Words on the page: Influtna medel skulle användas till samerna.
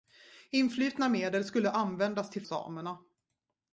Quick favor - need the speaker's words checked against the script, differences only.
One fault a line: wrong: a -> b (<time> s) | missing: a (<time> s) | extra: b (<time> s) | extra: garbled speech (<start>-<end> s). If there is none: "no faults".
no faults